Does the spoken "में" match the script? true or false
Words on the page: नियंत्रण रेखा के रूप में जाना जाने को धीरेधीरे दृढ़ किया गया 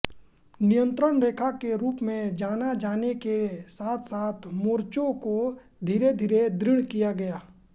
true